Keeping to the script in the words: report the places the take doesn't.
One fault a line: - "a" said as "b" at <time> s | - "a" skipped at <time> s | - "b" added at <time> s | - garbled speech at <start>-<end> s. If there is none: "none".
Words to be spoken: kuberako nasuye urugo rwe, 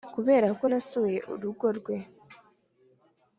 none